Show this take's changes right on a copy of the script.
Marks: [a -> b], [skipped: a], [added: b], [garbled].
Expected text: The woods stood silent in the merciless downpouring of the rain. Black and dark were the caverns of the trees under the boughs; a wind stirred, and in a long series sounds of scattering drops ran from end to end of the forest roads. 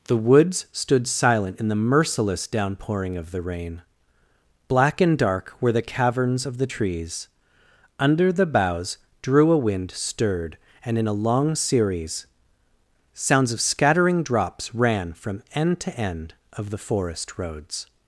The woods stood silent in the merciless downpouring of the rain. Black and dark were the caverns of the trees under the boughs; [added: drew] a wind stirred, and in a long series sounds of scattering drops ran from end to end of the forest roads.